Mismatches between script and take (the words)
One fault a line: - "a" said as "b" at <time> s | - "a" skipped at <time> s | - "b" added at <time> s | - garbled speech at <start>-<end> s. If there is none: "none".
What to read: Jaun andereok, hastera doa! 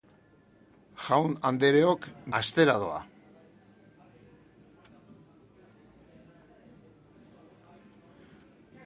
none